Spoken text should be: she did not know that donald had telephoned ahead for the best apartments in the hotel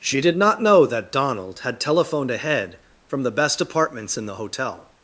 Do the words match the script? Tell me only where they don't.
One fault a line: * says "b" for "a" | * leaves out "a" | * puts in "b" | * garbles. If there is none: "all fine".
* says "from" for "for"